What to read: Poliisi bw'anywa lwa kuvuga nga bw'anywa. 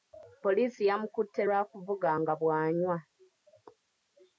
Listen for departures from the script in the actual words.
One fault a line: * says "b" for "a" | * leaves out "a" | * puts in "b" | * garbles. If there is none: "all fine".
* says "yamukutte" for "bw'anywa"